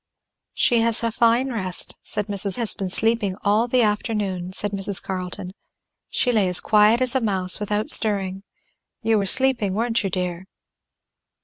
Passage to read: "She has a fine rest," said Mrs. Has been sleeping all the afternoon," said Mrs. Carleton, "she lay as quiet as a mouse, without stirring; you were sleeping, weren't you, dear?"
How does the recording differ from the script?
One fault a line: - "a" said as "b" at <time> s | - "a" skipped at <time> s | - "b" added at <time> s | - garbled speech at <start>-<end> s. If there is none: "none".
none